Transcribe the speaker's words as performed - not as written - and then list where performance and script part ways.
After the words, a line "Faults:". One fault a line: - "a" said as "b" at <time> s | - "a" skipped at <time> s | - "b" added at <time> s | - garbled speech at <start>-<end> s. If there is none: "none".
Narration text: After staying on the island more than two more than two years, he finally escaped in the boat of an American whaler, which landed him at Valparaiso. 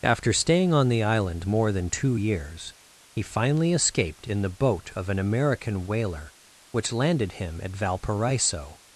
After staying on the island more than two years, he finally escaped in the boat of an American whaler, which landed him at Valparaiso.
Faults:
- "more than two" skipped at 2.1 s